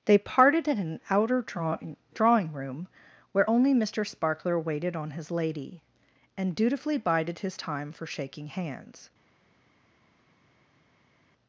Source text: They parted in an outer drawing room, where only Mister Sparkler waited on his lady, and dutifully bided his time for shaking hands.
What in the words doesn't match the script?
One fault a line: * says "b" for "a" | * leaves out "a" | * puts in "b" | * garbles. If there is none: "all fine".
* puts in "drawing"